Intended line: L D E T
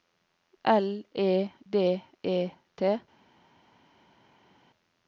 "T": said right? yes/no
yes